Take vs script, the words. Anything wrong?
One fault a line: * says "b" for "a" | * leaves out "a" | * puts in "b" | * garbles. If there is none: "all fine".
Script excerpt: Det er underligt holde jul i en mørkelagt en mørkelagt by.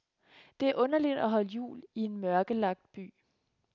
* puts in "at"
* leaves out "en mørkelagt"